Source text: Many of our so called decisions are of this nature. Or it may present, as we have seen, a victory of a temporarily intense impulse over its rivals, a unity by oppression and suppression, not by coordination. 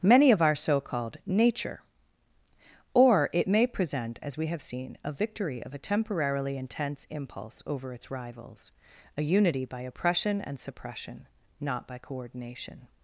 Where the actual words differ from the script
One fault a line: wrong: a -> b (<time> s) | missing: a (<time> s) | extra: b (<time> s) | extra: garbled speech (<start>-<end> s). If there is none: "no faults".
missing: decisions are of this (1.2 s)